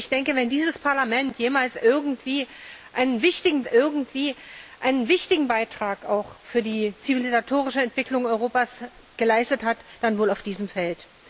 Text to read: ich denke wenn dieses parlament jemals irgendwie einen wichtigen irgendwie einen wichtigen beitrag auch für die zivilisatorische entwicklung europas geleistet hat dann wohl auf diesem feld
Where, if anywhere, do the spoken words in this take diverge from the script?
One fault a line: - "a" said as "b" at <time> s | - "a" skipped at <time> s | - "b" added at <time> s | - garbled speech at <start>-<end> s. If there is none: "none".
none